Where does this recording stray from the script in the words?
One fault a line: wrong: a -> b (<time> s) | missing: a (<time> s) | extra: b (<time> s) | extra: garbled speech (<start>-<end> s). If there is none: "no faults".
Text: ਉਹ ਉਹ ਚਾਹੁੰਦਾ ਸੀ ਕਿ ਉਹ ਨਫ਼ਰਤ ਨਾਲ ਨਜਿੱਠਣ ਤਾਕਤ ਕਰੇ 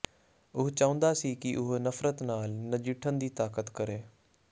missing: ਉਹ (0.7 s)
extra: ਦੀ (3.2 s)